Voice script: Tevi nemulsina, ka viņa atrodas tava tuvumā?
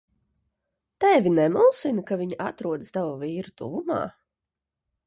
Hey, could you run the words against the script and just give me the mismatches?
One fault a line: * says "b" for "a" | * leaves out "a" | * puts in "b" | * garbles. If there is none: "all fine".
* puts in "vīra"